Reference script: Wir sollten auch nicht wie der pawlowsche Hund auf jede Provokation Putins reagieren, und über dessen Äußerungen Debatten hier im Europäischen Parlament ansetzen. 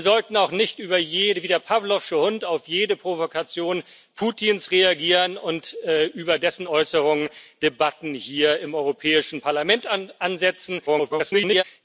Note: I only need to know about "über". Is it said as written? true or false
true